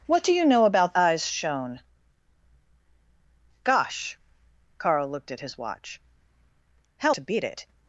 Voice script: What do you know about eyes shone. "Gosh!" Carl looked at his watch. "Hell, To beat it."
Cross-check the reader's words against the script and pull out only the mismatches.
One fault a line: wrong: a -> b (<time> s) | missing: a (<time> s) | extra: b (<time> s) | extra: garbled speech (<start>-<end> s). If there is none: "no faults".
no faults